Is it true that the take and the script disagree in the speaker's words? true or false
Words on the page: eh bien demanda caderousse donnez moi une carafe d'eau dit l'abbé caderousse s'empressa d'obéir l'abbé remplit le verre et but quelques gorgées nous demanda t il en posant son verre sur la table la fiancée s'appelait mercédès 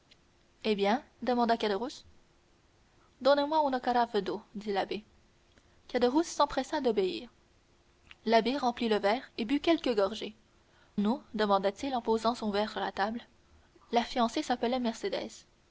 false